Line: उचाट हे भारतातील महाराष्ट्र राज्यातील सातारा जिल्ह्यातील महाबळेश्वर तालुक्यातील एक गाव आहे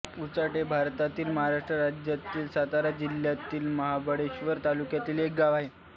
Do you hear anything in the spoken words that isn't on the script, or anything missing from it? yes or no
no